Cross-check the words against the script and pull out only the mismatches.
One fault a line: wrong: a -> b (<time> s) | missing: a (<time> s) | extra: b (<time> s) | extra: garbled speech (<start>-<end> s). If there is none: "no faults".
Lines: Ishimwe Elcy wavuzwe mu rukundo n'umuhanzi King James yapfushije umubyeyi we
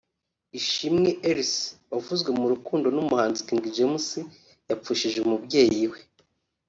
no faults